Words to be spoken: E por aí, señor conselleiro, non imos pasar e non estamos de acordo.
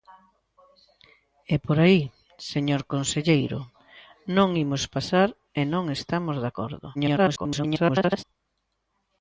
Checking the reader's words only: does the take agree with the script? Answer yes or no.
no